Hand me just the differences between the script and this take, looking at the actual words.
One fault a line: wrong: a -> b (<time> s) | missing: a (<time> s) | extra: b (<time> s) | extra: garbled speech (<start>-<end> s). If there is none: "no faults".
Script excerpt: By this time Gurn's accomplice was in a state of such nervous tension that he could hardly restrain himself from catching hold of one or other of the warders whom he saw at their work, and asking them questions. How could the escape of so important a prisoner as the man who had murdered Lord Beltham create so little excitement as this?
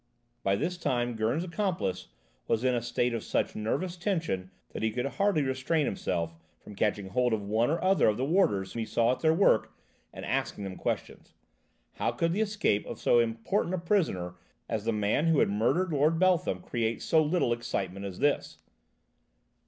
missing: whom (8.7 s)